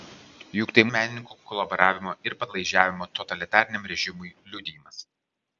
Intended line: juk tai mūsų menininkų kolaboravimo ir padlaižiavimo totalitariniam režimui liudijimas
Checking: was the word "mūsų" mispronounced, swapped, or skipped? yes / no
yes